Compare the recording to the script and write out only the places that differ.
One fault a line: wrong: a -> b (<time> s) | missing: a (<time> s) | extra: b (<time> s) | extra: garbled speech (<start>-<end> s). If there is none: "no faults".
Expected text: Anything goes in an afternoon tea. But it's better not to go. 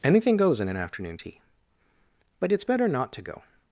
no faults